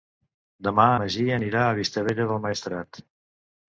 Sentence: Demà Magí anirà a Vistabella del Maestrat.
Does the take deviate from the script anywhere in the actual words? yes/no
no